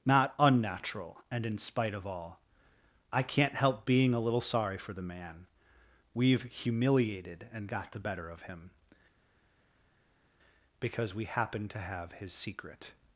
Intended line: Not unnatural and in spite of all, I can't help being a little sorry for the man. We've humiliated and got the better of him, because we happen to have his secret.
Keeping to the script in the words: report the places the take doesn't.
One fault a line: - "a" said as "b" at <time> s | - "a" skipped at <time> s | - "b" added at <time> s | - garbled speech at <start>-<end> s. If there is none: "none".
none